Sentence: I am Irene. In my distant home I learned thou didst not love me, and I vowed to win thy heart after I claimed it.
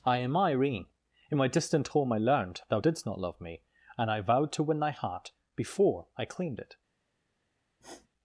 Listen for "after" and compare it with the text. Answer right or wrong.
wrong